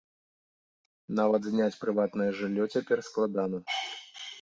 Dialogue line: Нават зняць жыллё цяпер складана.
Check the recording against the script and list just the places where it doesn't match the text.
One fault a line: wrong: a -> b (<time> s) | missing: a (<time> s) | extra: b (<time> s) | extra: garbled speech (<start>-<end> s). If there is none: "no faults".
extra: прыватнае (1.8 s)